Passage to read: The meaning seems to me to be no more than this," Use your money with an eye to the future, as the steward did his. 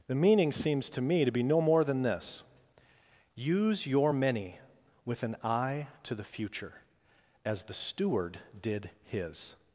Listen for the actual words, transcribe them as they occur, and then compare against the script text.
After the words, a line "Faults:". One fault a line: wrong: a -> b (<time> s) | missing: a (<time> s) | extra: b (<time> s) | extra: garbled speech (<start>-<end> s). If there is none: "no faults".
The meaning seems to me to be no more than this," Use your many with an eye to the future, as the steward did his.
Faults:
wrong: money -> many (4.1 s)